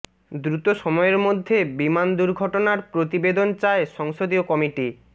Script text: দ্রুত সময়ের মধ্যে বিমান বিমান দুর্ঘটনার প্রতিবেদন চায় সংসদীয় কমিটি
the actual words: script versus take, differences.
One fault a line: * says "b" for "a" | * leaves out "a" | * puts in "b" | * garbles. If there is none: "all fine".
* leaves out "বিমান"